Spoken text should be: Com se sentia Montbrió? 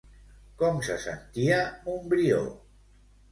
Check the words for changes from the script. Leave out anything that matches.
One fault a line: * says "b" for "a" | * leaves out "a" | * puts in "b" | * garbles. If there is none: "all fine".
all fine